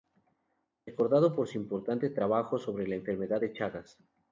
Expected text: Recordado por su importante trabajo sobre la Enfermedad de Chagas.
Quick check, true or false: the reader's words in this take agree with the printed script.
true